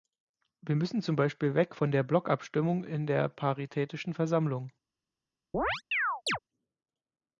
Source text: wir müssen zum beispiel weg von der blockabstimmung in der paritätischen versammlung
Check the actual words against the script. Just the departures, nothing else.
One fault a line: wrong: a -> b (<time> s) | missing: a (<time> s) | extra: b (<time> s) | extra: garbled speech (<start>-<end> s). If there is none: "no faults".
no faults